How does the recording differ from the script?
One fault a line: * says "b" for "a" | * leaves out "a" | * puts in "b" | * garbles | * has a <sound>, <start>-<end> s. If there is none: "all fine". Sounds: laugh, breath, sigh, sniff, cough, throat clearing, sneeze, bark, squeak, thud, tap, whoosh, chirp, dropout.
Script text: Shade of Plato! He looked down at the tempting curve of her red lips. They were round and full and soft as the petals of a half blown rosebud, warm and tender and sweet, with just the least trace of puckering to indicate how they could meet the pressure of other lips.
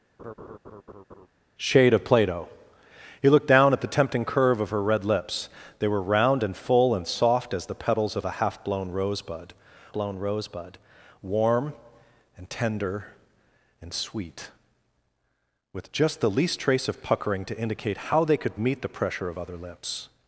* has a laugh, 0.2-1.3 s
* puts in "blown rosebud"